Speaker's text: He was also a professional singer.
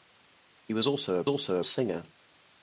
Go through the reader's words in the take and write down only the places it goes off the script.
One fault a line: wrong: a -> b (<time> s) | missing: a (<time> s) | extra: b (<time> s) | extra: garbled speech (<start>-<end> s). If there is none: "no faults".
wrong: professional -> also (1.3 s)